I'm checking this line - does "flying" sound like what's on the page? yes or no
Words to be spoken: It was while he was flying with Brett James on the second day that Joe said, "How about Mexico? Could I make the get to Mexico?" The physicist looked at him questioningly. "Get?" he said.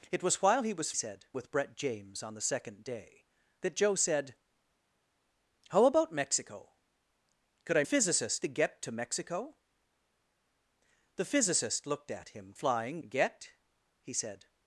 no